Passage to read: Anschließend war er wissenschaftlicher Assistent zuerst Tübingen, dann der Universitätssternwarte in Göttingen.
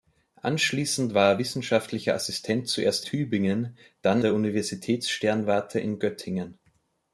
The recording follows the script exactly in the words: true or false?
true